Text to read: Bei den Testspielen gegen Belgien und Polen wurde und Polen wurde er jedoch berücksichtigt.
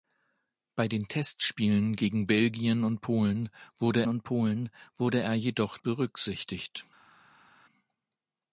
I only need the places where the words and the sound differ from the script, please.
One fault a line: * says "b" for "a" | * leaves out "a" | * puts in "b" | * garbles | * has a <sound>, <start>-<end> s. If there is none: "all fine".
all fine